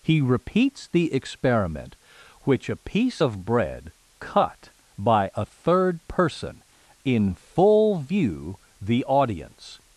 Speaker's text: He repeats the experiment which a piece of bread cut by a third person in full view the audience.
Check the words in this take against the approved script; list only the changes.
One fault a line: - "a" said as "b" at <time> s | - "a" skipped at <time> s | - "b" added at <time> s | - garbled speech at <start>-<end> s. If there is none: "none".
none